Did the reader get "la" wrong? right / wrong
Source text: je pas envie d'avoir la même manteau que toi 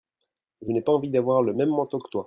wrong